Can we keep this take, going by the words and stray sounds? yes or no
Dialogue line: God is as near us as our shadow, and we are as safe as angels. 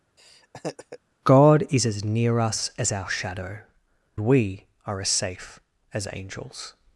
no